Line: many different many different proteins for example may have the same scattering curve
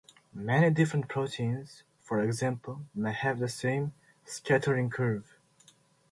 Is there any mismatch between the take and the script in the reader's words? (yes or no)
yes